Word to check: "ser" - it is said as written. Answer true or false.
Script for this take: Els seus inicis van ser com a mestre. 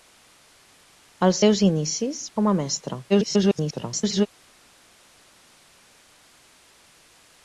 false